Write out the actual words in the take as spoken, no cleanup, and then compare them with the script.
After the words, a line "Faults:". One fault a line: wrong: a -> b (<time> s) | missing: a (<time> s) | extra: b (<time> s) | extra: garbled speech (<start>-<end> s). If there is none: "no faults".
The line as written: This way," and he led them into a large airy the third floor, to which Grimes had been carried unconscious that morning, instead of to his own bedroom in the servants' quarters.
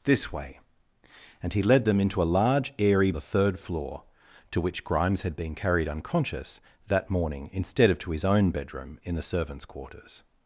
This way," and he led them into a large airy the third floor, to which Grimes had been carried unconscious that morning, instead of to his own bedroom in the servants' quarters.
Faults:
no faults